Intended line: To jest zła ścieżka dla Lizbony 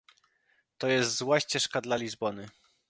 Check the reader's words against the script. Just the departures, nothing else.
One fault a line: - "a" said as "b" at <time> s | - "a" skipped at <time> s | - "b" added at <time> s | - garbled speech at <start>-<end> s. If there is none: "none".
none